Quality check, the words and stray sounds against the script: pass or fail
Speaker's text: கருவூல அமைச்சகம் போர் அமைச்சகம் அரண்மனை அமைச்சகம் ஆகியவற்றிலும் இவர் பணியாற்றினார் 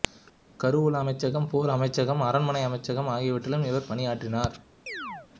fail